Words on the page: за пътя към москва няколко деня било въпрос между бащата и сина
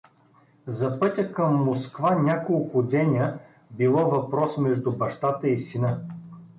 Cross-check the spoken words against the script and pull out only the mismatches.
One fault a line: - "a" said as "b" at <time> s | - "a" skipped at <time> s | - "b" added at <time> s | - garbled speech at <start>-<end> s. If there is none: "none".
none